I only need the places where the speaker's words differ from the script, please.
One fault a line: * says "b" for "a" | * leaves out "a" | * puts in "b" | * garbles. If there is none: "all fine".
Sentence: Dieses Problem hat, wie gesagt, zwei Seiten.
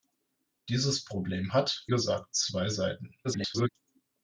* leaves out "wie"
* garbles